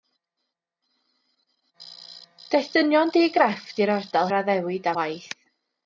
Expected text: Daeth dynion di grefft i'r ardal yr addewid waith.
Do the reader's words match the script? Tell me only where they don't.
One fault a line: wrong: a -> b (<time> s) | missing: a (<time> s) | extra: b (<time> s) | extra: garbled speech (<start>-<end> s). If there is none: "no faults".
no faults